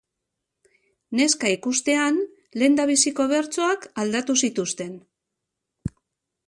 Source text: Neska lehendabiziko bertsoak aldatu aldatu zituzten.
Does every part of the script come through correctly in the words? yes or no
no